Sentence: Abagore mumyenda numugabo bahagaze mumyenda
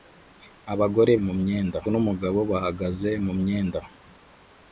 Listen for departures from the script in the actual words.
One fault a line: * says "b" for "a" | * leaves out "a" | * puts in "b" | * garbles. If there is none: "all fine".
all fine